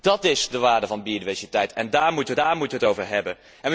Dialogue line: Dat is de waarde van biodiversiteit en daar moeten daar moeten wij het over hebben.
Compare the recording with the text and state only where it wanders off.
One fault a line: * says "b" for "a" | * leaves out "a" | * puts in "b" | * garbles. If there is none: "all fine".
all fine